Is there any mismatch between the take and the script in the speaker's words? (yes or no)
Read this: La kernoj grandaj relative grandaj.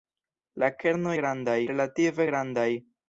no